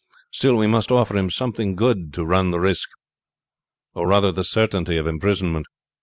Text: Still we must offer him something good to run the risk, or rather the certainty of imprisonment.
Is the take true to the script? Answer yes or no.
yes